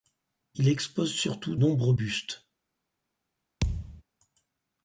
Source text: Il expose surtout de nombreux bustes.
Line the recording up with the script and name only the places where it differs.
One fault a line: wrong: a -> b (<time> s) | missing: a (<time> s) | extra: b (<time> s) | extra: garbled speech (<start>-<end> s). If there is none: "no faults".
missing: de (1.6 s)